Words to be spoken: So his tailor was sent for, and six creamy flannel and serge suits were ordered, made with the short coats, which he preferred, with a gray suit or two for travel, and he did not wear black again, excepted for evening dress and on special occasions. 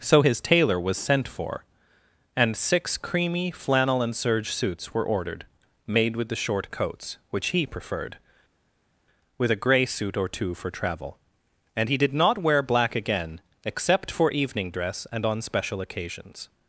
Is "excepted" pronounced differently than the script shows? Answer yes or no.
yes